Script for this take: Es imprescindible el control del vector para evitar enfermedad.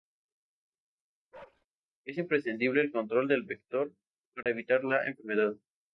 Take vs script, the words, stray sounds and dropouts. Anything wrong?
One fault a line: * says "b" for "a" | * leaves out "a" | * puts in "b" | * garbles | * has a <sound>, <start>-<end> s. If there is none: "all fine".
* has a bark, 1.3-1.7 s
* has a dropout, 4.4-4.5 s
* puts in "la"